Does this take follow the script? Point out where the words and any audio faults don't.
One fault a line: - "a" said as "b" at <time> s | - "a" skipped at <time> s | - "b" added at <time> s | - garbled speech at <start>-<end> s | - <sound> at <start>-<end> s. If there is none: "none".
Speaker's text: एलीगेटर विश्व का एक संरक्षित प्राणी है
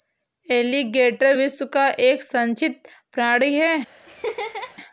- laugh at 4.1-4.8 s